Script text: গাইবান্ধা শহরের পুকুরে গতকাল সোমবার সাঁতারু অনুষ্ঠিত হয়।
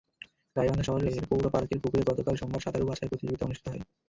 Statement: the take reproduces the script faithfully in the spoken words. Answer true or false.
false